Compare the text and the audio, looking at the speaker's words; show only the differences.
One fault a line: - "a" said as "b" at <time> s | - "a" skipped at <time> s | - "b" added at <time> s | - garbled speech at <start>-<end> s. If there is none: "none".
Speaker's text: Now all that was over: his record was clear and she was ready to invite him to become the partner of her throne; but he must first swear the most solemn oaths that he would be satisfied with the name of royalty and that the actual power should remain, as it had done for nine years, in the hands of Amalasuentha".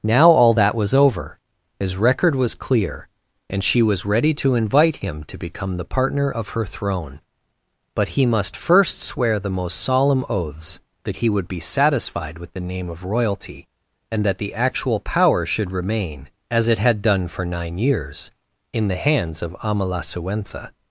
none